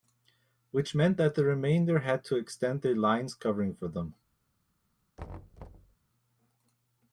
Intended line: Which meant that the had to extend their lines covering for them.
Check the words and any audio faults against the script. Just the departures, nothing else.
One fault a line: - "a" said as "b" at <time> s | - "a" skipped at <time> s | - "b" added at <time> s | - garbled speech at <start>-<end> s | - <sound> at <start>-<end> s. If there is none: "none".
- "remainder" added at 1.4 s
- thud at 5.2-6.0 s